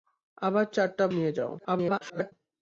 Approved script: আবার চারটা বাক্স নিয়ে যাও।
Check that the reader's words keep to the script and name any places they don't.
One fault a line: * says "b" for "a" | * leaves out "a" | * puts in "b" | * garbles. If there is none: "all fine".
* leaves out "বাক্স"
* garbles